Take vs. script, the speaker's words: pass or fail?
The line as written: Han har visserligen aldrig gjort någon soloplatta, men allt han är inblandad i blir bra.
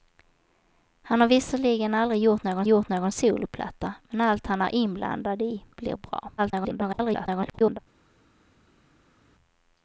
fail